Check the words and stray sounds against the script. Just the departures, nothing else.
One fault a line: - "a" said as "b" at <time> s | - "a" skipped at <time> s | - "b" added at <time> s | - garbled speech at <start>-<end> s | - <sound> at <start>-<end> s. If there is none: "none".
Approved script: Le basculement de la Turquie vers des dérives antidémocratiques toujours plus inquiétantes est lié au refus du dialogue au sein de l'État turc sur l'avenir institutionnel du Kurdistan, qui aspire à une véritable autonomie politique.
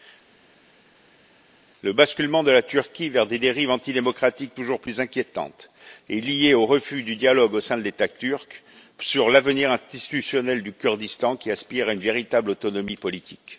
none